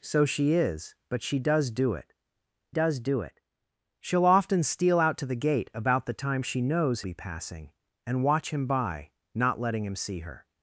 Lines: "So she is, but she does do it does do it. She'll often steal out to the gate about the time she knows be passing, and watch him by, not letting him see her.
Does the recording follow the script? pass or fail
pass